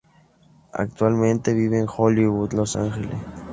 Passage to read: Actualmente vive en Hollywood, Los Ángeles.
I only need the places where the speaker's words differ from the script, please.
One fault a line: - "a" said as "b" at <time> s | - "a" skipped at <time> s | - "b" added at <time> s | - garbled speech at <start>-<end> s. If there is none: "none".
none